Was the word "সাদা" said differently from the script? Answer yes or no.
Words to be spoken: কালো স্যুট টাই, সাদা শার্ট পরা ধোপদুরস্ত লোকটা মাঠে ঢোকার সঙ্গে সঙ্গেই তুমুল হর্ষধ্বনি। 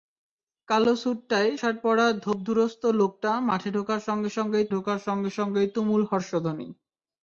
yes